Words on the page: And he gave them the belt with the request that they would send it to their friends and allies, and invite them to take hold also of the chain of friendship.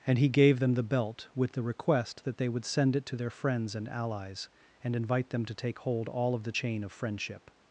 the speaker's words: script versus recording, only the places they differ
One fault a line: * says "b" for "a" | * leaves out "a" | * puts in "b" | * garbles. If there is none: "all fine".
* says "all" for "also"